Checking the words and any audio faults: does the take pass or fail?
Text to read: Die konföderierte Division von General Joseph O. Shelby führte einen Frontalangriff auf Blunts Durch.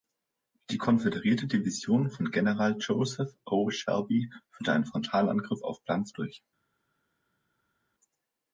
pass